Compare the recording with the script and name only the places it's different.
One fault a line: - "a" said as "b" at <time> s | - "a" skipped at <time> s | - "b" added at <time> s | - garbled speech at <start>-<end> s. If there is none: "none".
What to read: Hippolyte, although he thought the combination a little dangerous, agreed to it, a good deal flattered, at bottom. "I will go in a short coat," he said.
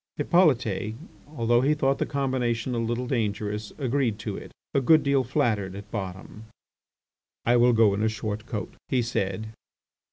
none